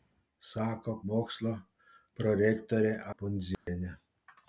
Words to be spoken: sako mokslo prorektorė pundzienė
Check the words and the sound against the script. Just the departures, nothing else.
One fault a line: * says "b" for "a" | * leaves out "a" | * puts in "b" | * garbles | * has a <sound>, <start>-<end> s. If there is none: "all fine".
* has a dropout, 3.5-3.7 s